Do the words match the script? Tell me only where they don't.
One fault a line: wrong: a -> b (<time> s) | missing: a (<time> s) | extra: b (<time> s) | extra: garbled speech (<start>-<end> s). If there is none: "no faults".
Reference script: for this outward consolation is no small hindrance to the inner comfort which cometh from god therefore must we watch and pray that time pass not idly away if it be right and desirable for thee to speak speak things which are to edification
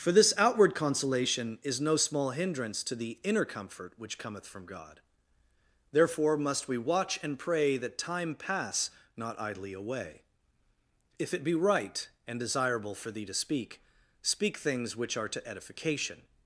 no faults